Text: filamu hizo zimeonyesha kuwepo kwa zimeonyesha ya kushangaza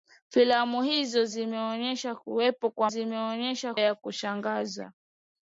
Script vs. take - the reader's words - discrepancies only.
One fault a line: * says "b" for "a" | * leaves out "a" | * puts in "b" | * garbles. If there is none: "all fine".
all fine